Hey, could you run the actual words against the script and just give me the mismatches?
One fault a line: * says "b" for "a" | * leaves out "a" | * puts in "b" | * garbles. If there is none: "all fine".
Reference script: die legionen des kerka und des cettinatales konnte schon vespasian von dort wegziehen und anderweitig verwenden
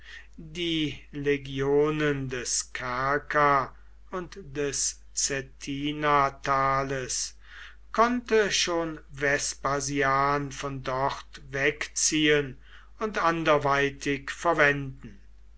all fine